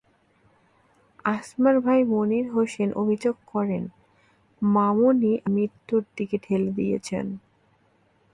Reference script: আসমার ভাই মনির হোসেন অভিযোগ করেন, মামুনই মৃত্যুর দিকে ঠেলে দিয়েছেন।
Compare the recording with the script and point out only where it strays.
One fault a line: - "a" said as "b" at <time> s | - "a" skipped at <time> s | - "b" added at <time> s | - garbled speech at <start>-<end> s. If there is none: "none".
none